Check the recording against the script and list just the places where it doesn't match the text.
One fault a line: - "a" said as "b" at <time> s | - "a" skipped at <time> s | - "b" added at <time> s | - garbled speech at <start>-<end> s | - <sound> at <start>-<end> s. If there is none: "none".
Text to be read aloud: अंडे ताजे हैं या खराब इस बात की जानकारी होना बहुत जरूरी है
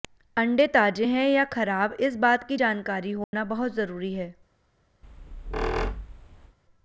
- dropout at 3.2-3.3 s
- squeak at 5.0-6.6 s